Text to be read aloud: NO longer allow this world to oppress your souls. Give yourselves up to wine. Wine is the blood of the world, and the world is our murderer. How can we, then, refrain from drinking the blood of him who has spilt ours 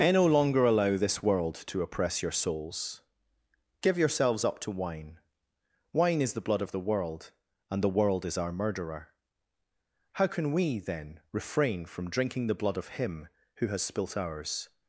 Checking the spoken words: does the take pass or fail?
fail